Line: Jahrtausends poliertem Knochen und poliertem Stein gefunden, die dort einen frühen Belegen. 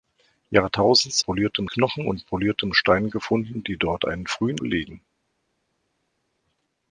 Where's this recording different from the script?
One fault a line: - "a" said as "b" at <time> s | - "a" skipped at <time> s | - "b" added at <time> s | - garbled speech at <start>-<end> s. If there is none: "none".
none